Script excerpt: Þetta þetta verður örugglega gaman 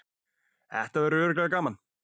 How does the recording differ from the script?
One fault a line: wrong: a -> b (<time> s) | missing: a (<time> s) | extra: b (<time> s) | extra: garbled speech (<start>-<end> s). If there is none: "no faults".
missing: þetta (1.1 s)